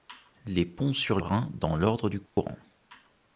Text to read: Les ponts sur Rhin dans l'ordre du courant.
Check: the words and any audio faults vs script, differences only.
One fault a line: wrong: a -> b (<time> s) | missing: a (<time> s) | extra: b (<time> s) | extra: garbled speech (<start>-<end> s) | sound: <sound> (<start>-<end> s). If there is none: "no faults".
sound: dropout (2.3-2.4 s)